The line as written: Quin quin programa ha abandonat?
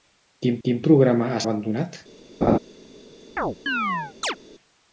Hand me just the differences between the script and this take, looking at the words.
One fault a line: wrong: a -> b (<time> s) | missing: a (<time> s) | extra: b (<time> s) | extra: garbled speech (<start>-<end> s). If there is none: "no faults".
no faults